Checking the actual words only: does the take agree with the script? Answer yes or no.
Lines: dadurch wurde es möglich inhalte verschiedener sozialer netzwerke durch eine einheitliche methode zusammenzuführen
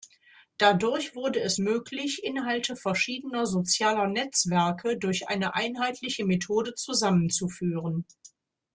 yes